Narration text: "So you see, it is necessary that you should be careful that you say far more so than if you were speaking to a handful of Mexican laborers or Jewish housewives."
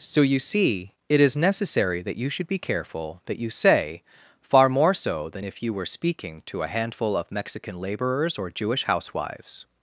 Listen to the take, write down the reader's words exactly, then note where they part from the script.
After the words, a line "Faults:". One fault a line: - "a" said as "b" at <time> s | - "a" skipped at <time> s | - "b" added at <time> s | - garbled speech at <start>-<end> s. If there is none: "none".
"So you see, it is necessary that you should be careful that you say far more so than if you were speaking to a handful of Mexican laborers or Jewish housewives."
Faults:
none